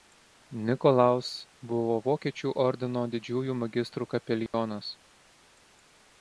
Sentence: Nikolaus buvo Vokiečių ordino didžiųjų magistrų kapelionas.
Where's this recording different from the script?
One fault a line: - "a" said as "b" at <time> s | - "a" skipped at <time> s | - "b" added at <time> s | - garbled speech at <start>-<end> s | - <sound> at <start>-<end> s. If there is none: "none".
- dropout at 4.5-4.5 s